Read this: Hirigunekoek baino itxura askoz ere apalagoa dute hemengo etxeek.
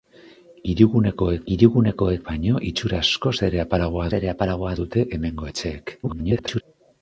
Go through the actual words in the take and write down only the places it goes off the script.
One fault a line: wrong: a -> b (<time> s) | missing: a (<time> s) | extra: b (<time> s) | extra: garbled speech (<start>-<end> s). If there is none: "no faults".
extra: hirigunekoek (1.5 s)
extra: ere apalagoa (4.2 s)
extra: garbled speech (6.0-6.6 s)